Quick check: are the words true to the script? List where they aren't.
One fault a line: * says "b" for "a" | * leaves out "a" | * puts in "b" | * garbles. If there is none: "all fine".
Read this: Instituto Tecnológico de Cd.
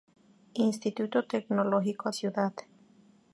* leaves out "de"